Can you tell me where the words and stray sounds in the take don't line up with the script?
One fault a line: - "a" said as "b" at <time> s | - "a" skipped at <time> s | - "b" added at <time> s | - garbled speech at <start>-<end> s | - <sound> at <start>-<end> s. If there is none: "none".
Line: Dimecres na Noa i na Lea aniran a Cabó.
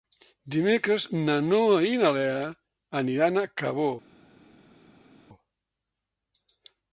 none